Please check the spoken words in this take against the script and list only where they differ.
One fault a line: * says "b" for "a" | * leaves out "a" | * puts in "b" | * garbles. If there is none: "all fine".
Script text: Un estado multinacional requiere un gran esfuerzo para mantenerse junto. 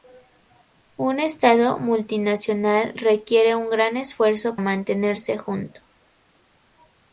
* leaves out "para"